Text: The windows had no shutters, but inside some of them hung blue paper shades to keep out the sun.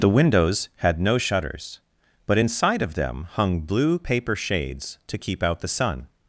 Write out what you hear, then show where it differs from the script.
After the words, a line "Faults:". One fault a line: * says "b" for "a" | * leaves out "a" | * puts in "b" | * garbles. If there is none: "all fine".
The windows had no shutters, but inside of them hung blue paper shades to keep out the sun.
Faults:
* leaves out "some"